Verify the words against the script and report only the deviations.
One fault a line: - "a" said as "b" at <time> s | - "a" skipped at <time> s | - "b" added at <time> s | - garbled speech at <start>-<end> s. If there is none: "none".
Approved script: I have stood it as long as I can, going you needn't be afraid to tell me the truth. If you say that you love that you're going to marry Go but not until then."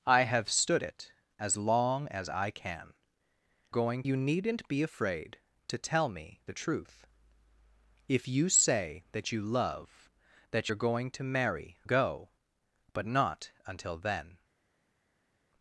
none